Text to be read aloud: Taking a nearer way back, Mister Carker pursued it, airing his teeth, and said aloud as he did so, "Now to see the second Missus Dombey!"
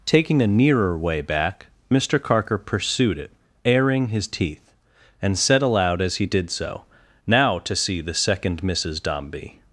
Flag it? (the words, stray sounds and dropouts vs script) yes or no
no